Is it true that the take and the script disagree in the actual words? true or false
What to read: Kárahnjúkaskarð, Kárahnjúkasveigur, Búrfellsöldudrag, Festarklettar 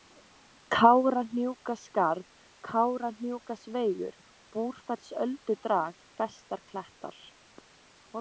false